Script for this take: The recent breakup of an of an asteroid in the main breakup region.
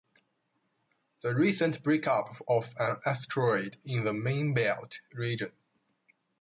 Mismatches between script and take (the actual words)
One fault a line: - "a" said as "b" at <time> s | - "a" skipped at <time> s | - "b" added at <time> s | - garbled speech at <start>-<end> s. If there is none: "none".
- "of an" skipped at 3.0 s
- "breakup" said as "belt" at 4.5 s